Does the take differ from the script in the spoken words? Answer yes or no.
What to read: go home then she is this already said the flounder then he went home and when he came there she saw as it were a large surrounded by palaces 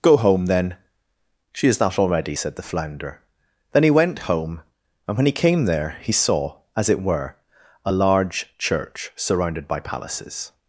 yes